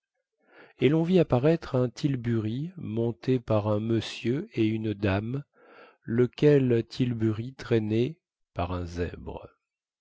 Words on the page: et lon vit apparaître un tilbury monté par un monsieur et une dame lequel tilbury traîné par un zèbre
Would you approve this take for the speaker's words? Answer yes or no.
yes